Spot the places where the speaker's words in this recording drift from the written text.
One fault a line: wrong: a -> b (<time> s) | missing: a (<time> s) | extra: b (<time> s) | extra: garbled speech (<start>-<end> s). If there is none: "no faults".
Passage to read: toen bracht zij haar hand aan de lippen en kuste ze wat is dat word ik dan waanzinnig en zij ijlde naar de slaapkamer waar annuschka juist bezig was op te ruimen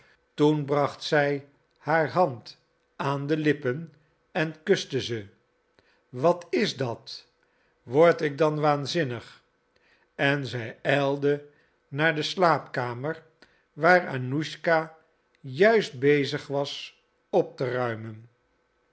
no faults